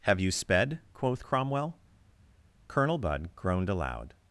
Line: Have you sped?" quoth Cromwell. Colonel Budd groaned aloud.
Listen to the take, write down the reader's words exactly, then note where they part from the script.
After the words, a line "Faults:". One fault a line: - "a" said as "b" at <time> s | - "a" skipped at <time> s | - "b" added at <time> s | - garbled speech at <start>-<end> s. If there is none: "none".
Have you sped?" quoth Cromwell. Colonel Budd groaned aloud.
Faults:
none